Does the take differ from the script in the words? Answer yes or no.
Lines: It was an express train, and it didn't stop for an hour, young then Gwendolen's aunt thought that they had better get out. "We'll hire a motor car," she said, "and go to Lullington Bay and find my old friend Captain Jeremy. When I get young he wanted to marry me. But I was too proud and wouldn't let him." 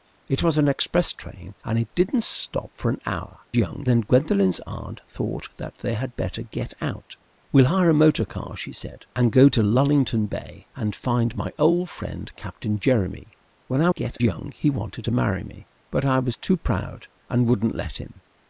no